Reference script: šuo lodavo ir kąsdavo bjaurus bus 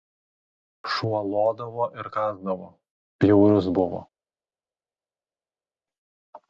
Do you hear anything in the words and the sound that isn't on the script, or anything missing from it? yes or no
yes